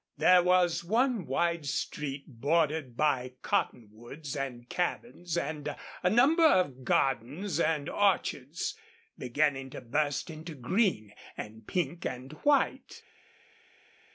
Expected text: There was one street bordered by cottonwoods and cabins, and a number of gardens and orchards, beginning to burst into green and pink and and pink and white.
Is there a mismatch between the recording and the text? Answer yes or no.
yes